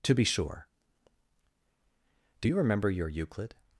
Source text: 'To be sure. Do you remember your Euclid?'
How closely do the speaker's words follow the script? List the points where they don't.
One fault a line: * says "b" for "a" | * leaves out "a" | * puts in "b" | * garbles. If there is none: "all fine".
all fine